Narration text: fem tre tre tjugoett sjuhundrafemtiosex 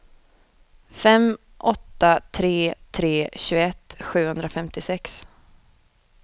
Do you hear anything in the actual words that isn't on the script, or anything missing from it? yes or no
yes